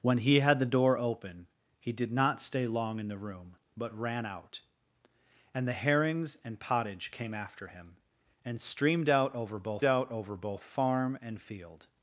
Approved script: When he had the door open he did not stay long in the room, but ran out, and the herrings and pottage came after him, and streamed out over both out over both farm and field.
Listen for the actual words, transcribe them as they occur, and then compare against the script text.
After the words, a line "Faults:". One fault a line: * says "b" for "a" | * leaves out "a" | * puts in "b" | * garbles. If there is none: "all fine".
When he had the door open he did not stay long in the room, but ran out, and the herrings and pottage came after him, and streamed out over both out over both farm and field.
Faults:
all fine